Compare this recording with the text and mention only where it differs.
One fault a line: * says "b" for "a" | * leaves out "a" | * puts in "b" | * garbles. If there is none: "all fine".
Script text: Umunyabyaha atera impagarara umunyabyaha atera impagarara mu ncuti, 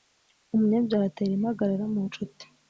* leaves out "umunyabyaha atera impagarara"